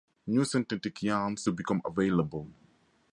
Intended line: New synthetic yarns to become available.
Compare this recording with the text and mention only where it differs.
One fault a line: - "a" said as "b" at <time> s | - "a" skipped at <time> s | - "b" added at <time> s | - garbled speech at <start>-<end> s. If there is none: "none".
none